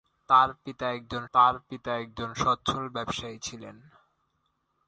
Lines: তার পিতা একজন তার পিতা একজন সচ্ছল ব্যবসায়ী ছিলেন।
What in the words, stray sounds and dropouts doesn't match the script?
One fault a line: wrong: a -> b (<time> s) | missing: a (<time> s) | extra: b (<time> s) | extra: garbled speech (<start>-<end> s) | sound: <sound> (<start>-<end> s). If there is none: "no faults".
no faults